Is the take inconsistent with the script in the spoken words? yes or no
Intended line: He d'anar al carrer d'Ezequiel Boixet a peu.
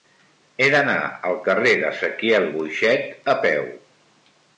no